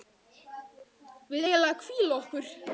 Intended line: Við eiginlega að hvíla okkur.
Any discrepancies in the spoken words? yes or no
no